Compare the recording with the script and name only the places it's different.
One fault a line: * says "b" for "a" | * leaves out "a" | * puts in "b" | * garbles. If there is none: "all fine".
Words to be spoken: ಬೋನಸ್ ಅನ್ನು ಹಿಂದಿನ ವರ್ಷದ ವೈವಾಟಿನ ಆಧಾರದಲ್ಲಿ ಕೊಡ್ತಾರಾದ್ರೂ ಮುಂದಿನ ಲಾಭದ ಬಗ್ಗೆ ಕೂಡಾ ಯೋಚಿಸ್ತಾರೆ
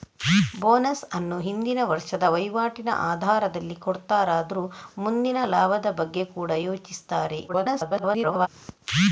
* garbles